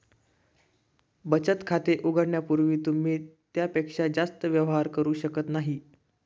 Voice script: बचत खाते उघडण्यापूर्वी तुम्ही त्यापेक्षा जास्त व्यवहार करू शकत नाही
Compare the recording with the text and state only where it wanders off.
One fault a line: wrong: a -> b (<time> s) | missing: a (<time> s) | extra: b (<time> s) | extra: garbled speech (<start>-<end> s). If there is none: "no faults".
no faults